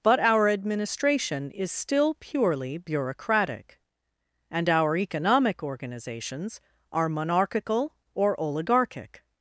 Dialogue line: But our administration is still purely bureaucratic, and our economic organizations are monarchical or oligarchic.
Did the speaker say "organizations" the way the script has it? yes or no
yes